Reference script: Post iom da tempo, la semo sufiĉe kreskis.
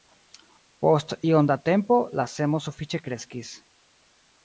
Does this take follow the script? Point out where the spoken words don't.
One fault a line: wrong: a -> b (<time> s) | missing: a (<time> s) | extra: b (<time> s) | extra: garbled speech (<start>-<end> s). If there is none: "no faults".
no faults